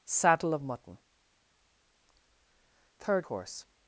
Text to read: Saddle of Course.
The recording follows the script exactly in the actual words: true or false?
false